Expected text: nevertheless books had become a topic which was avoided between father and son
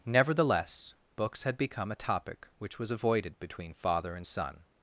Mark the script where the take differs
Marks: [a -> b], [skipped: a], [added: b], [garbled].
nevertheless books had become a topic which was avoided between father and son